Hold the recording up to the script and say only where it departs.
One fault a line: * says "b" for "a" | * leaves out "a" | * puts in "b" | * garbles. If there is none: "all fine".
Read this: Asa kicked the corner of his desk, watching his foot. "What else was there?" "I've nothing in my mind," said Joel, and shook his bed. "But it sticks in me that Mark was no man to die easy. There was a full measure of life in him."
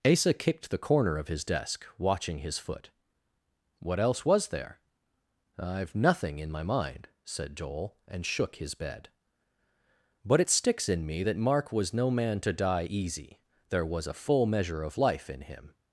all fine